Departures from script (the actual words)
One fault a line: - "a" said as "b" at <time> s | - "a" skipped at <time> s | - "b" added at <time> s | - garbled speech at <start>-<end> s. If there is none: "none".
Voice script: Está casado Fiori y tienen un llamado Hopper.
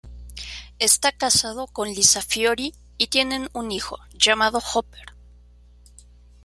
- "con Lisa" added at 1.7 s
- "hijo" added at 3.7 s